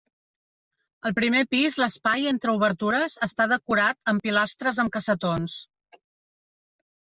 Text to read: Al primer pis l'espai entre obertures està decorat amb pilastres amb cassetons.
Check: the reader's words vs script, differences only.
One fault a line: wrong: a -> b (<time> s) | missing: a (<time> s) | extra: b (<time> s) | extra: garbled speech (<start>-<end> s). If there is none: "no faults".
no faults